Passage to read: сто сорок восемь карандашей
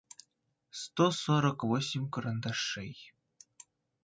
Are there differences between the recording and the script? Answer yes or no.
no